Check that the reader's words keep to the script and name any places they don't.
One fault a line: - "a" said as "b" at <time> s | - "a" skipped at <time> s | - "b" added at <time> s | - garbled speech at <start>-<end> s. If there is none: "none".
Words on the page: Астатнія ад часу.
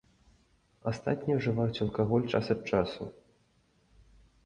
- "ўжываюць алкаголь час" added at 1.4 s